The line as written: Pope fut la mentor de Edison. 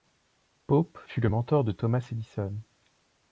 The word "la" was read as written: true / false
false